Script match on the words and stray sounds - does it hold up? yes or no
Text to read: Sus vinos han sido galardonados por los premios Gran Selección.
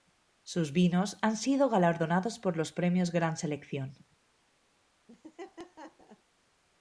no